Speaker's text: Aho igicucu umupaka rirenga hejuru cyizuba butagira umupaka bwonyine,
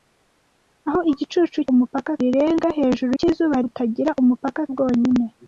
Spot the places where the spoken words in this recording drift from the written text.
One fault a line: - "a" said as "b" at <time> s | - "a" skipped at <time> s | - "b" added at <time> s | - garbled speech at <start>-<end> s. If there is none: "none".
none